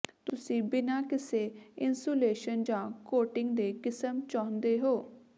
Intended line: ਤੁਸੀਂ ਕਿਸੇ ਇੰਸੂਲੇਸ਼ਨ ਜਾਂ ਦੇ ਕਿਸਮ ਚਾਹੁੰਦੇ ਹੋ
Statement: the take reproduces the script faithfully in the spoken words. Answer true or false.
false